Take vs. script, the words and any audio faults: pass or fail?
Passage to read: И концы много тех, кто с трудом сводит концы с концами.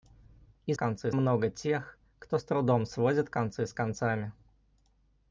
pass